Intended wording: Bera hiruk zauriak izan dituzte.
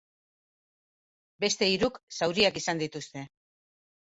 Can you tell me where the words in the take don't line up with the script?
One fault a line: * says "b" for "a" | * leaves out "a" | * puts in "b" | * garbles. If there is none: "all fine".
* says "Beste" for "Bera"